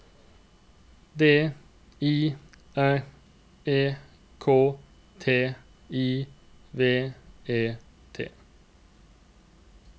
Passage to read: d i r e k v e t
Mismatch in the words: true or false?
true